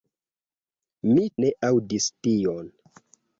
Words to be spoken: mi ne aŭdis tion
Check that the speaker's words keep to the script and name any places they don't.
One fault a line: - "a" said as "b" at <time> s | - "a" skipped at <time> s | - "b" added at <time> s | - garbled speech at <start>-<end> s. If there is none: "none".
none